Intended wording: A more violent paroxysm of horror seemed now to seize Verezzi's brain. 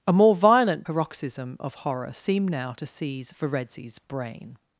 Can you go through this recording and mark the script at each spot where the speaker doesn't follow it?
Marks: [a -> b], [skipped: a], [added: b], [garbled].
A more violent paroxysm of horror seemed now to seize Verezzi's brain.